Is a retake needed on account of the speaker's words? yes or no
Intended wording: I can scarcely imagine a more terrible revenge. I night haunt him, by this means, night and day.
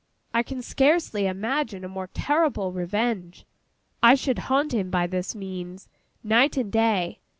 yes